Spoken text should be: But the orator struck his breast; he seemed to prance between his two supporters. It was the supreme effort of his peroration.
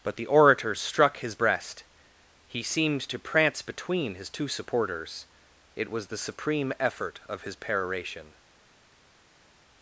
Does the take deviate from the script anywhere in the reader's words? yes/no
no